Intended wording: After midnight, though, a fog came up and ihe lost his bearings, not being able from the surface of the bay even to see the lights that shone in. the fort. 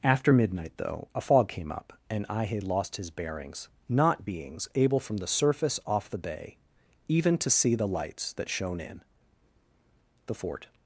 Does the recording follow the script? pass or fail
fail